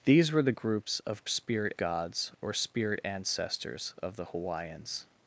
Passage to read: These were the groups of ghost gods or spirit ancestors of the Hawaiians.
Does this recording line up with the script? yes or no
no